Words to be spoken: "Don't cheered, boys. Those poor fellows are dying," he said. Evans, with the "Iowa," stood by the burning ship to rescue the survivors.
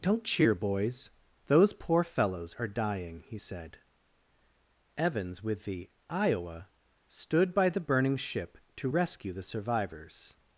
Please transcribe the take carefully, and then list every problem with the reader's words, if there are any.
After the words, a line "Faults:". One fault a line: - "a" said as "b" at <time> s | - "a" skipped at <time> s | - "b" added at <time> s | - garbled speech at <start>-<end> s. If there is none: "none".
"Don't cheer, boys. Those poor fellows are dying," he said. Evans, with the "Iowa," stood by the burning ship to rescue the survivors.
Faults:
- "cheered" said as "cheer" at 0.2 s